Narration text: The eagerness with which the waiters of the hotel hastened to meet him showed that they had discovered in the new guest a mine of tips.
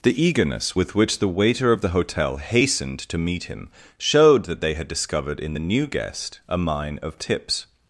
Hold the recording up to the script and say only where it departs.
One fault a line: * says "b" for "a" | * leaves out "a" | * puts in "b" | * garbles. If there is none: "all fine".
* says "waiter" for "waiters"